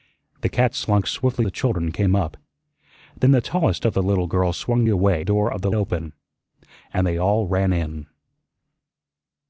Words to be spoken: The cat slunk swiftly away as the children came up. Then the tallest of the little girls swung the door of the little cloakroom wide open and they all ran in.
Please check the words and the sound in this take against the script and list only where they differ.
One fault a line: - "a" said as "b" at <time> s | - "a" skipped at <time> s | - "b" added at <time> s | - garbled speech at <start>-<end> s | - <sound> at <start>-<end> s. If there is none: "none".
- "away as" skipped at 1.5 s
- "the" said as "away" at 4.9 s
- "little cloakroom wide" skipped at 5.7 s